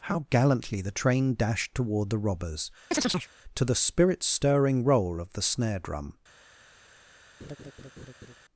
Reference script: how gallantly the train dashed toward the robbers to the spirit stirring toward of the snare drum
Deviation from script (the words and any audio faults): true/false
true